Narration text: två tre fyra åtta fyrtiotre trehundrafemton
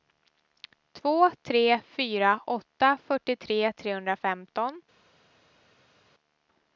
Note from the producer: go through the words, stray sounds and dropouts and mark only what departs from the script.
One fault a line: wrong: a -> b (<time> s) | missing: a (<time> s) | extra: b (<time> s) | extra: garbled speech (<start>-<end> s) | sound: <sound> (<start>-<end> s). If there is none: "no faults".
no faults